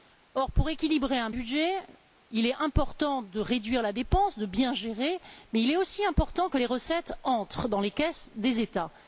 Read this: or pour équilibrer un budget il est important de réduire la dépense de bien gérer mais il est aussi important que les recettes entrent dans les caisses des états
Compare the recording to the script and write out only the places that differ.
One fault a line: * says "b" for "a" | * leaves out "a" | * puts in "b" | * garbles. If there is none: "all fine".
all fine